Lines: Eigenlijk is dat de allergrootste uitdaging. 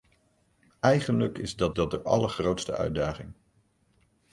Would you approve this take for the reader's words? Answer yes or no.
no